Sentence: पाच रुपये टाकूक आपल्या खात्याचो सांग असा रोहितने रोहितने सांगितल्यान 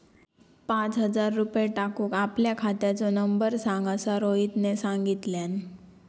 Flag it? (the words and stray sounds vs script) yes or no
yes